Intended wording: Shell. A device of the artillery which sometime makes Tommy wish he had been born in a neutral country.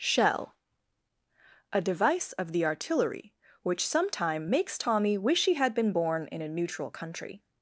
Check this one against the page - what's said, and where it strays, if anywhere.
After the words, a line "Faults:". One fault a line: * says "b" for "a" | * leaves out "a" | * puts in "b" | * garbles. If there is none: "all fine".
Shell. A device of the artillery which sometime makes Tommy wish he had been born in a neutral country.
Faults:
all fine